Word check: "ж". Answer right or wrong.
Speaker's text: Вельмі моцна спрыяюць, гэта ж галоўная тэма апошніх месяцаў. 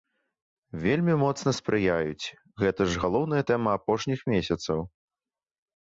right